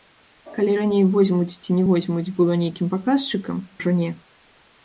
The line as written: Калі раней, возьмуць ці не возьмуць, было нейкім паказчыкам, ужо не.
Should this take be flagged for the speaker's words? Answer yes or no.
no